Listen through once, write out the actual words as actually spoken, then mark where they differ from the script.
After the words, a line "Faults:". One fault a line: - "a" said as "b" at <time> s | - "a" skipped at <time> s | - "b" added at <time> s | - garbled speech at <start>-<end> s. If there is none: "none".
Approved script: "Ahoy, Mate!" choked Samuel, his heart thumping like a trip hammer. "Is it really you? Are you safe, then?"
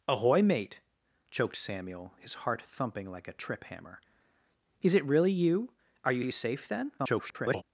"Ahoy, Mate!" choked Samuel, his heart thumping like a trip hammer. "Is it really you? Are you you safe, then?" [garbled]
Faults:
- "you" added at 6.2 s
- garbled speech at 7.0-7.6 s